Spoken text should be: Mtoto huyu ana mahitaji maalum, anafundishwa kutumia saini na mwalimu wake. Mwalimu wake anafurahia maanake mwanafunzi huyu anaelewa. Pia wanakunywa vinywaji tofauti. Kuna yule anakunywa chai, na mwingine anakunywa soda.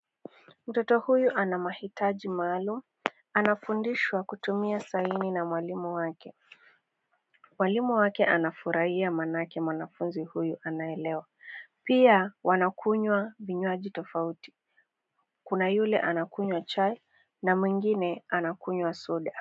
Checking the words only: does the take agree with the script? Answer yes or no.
yes